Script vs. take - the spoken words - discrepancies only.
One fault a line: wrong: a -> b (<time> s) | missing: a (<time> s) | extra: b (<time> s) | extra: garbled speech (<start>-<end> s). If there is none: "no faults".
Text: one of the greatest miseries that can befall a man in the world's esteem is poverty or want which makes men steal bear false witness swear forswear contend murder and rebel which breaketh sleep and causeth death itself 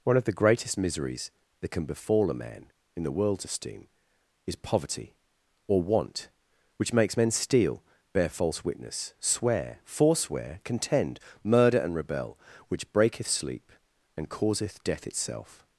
no faults